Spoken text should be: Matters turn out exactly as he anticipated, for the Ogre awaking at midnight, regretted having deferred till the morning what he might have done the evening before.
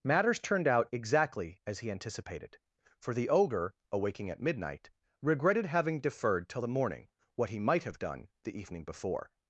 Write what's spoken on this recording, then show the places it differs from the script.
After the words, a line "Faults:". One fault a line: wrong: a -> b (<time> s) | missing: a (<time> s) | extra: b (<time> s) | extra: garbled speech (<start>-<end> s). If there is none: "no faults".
Matters turned out exactly as he anticipated, for the Ogre awaking at midnight, regretted having deferred till the morning what he might have done the evening before.
Faults:
wrong: turn -> turned (0.4 s)